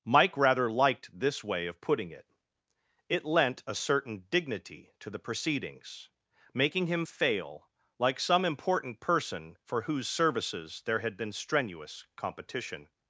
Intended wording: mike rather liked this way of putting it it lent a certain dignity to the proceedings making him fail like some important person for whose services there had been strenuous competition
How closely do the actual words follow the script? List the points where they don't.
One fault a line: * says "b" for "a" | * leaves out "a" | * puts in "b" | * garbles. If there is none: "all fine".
all fine